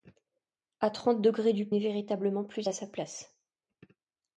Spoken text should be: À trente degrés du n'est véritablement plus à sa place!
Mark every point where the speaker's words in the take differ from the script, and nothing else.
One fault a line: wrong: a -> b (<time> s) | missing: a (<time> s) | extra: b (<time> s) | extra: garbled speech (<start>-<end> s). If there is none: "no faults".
no faults